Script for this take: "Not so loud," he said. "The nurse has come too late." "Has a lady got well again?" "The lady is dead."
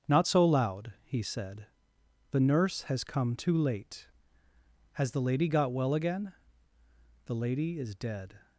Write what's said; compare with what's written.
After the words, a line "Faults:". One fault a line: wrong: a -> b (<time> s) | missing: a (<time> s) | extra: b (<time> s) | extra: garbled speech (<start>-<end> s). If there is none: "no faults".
"Not so loud," he said. "The nurse has come too late." "Has the lady got well again?" "The lady is dead."
Faults:
wrong: a -> the (5.1 s)